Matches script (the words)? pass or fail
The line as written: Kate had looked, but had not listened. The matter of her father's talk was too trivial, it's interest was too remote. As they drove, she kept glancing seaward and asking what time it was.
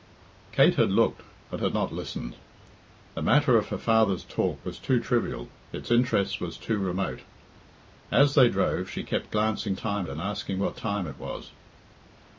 fail